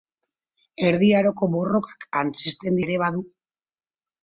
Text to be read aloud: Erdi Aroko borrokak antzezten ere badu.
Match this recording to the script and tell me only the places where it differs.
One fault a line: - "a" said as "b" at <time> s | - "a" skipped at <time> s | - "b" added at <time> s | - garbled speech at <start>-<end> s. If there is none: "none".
none